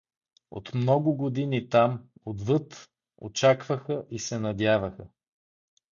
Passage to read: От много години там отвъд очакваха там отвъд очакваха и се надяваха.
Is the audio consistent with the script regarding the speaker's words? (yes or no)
no